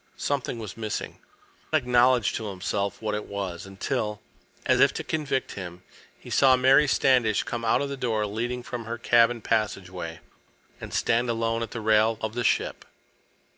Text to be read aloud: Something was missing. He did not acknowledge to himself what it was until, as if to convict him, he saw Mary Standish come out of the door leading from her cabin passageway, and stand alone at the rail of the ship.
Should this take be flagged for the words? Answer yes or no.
yes